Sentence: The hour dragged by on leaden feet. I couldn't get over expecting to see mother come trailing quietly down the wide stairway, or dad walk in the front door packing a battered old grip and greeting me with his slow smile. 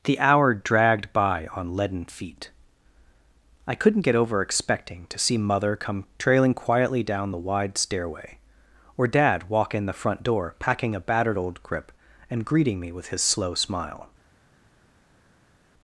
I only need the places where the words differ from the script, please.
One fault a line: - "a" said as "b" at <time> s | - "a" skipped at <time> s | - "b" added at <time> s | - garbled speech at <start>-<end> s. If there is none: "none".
none